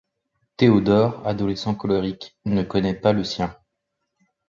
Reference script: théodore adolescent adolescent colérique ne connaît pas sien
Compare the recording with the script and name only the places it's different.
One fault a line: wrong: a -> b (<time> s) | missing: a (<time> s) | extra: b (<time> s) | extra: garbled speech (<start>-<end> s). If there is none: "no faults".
missing: adolescent (1.8 s)
extra: le (3.1 s)